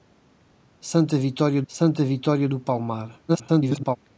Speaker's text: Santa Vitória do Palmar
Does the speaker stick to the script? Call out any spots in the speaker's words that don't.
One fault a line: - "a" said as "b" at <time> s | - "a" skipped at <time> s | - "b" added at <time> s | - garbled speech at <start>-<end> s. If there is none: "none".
- "santa Vitória" added at 1.7 s
- garbled speech at 3.3-4.0 s